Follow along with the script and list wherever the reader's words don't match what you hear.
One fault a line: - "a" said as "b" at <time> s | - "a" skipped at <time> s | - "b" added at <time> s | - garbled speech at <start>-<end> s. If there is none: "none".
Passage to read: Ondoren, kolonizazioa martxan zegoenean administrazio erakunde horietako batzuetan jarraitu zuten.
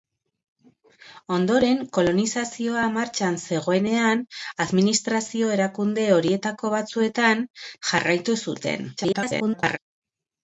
- garbled speech at 9.0-9.8 s